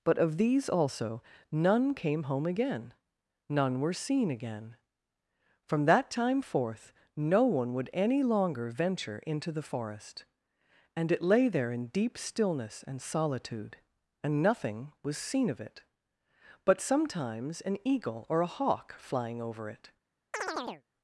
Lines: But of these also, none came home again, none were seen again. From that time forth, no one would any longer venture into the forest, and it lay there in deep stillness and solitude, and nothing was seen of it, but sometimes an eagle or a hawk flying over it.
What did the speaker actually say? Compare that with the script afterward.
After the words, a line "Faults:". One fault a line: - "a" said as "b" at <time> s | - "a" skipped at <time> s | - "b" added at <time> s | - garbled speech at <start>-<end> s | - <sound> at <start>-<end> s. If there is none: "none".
But of these also, none came home again, none were seen again. From that time forth, no one would any longer venture into the forest, and it lay there in deep stillness and solitude, and nothing was seen of it, but sometimes an eagle or a hawk flying over it.
Faults:
- chirp at 20.3-20.8 s